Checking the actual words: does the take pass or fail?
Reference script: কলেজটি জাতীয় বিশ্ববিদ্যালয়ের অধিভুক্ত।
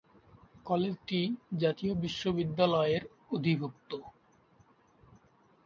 pass